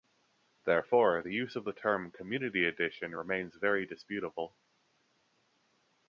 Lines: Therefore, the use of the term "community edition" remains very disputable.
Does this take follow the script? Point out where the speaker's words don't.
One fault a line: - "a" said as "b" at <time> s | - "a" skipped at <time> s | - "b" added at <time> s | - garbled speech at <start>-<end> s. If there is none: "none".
none